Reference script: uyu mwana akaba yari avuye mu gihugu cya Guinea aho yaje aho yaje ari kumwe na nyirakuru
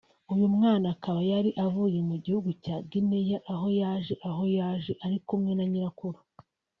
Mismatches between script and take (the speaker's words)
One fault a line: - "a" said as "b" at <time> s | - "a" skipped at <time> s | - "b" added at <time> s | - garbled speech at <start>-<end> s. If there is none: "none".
none